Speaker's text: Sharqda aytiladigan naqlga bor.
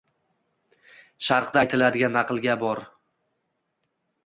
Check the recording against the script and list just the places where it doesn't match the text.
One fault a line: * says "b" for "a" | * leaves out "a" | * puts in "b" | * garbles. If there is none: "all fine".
all fine